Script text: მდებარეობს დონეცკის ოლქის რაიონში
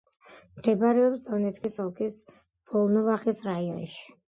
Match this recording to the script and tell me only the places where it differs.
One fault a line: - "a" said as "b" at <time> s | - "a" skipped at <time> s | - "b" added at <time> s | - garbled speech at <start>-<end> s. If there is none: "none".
- "ვოლნოვახის" added at 2.7 s